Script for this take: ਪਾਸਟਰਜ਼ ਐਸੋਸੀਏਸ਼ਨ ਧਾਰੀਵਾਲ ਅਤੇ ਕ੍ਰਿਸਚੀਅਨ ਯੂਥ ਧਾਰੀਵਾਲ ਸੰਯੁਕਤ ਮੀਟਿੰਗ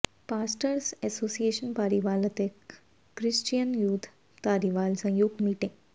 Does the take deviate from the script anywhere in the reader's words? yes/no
no